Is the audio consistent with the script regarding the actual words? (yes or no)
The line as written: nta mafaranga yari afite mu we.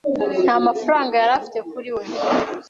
no